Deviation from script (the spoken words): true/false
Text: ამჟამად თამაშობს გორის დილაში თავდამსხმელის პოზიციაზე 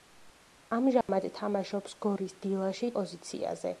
true